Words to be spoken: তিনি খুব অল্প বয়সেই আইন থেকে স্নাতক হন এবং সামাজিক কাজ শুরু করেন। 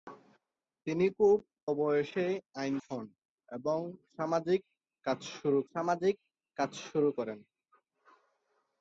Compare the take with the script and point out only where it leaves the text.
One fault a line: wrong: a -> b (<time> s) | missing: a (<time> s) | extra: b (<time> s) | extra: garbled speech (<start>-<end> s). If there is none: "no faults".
missing: অল্প (1.4 s)
wrong: থেকে স্নাতক হন এবং -> হন এবং সামাজিক কাজ শুরু (2.9 s)